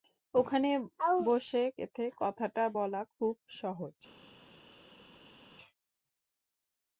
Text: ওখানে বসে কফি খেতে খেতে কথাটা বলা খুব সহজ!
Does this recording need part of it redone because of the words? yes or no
yes